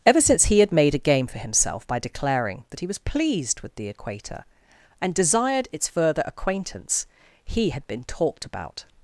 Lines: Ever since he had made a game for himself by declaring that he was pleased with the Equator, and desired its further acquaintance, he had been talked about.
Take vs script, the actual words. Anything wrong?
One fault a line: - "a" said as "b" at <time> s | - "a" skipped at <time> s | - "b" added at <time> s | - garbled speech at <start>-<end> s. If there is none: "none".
none